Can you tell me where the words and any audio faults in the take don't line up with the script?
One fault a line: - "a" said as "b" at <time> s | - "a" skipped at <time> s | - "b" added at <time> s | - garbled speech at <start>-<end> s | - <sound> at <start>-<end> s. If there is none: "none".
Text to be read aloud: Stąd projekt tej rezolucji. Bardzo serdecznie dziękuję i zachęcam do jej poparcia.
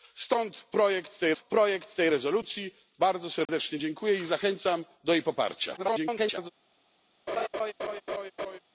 - "projekt tej" added at 1.4 s
- dropout at 3.5-3.5 s
- garbled speech at 5.8-6.5 s
- laugh at 7.3-8.6 s